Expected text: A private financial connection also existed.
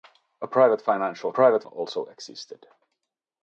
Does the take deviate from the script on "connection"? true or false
true